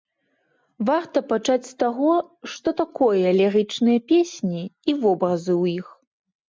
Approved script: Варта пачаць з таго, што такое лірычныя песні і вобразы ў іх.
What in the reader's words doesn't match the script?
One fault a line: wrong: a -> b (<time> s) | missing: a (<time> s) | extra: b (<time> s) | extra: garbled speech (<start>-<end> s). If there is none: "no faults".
no faults